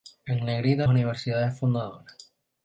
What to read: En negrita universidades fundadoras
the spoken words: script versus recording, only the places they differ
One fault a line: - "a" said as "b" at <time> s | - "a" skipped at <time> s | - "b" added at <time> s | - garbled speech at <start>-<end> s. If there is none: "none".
none